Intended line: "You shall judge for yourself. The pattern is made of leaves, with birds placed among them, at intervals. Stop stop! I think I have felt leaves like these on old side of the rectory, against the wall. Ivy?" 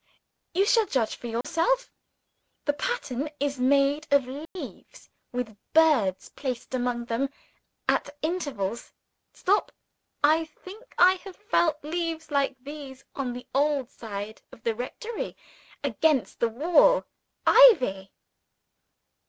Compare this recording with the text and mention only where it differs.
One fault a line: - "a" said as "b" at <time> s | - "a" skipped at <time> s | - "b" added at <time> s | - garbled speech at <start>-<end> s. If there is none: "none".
- "stop" skipped at 9.7 s
- "the" added at 13.3 s